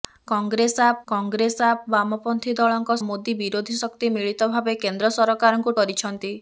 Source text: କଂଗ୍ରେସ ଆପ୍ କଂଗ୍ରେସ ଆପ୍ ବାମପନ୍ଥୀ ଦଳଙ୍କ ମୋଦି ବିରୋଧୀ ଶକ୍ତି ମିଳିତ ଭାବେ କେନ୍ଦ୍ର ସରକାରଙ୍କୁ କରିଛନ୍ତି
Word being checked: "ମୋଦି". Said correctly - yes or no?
yes